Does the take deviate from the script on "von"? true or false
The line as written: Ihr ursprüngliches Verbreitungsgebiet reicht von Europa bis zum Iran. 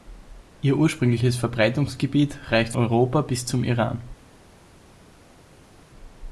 true